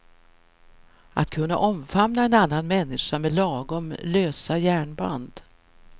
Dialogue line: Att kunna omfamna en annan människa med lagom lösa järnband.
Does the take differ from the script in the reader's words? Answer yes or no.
no